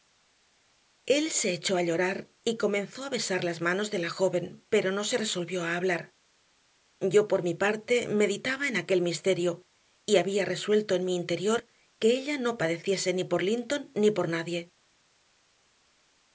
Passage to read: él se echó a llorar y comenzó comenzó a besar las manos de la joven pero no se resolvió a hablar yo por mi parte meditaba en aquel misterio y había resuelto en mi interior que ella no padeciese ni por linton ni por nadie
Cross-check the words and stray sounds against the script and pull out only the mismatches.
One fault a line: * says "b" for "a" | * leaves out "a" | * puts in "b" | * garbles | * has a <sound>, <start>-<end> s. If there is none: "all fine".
* leaves out "comenzó"